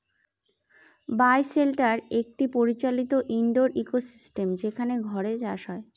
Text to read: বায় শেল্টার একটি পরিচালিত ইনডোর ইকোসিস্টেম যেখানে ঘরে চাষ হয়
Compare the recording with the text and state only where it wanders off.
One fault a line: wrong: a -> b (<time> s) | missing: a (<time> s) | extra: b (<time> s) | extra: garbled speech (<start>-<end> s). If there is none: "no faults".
no faults